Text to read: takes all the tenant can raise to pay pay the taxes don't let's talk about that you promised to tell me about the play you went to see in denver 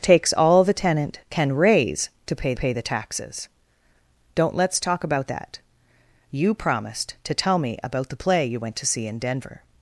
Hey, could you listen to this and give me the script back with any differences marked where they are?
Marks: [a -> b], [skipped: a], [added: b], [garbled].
takes all the tenant can raise to pay pay the taxes don't let's talk about that you promised to tell me about the play you went to see in denver